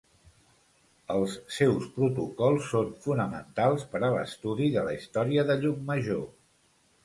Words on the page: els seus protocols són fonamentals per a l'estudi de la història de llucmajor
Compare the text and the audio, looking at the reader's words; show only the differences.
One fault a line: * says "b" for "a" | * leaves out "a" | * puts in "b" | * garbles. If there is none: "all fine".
all fine